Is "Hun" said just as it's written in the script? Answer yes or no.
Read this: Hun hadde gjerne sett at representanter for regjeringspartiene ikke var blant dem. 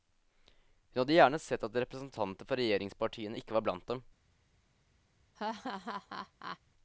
yes